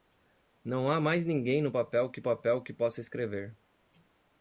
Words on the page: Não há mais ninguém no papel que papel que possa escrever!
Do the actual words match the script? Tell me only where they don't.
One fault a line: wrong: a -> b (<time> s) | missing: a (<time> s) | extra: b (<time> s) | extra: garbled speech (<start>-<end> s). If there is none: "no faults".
no faults